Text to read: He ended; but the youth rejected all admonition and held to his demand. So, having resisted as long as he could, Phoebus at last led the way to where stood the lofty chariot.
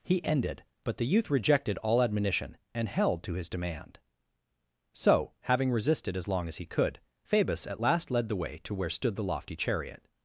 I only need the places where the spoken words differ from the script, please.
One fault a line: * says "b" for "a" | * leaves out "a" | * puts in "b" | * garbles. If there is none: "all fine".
all fine